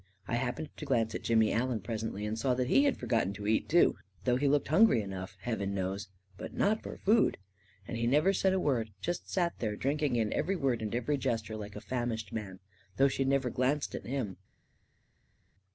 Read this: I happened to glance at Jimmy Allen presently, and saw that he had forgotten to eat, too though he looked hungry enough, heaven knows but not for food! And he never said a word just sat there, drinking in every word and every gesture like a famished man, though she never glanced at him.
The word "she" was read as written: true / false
true